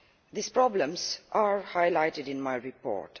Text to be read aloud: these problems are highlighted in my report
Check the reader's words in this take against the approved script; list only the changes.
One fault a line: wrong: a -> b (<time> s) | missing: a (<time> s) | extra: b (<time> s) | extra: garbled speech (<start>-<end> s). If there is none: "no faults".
no faults